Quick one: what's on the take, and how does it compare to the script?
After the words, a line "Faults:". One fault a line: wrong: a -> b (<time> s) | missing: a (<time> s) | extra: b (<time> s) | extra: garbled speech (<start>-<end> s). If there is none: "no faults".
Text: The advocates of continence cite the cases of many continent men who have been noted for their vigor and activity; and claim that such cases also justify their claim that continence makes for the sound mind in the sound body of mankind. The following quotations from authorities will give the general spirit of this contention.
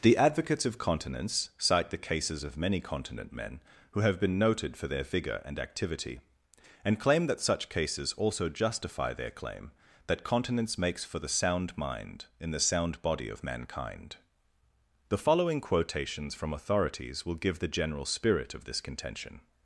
The advocates of continence cite the cases of many continent men who have been noted for their vigor and activity; and claim that such cases also justify their claim that continence makes for the sound mind in the sound body of mankind. The following quotations from authorities will give the general spirit of this contention.
Faults:
no faults